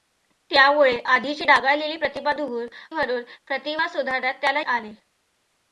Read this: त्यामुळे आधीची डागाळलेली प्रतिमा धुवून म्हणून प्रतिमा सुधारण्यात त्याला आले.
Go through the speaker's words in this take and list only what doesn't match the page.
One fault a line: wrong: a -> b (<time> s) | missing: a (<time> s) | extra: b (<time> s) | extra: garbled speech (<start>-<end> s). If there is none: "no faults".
no faults